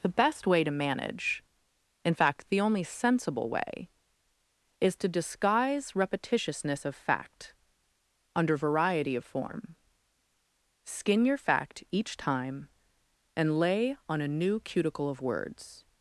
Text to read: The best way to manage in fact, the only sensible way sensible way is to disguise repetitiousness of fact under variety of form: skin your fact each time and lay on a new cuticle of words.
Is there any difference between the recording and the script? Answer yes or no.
yes